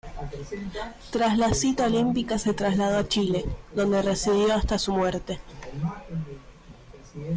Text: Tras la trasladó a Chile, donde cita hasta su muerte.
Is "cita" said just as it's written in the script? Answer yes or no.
no